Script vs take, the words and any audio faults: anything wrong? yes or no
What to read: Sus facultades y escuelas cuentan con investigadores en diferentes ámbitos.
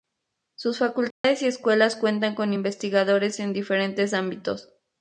yes